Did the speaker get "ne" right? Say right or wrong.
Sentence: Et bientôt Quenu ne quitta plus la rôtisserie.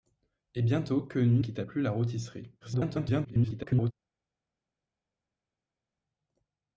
wrong